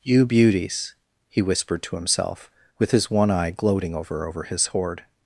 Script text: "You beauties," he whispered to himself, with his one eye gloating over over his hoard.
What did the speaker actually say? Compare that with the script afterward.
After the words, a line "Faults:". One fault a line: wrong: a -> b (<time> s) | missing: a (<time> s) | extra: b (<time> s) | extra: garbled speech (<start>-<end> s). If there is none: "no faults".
"You beauties," he whispered to himself, with his one eye gloating over over his hoard.
Faults:
no faults